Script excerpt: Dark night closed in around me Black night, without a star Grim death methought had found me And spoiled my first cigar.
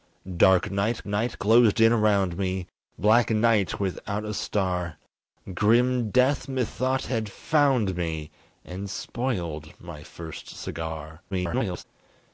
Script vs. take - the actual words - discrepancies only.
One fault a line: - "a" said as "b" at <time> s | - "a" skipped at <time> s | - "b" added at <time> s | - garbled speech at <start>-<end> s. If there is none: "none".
- "night" added at 1.1 s
- garbled speech at 11.3-11.8 s